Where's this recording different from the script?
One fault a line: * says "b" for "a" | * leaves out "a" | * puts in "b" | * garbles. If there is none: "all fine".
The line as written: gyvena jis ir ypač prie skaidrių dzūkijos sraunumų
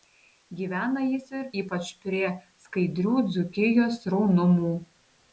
all fine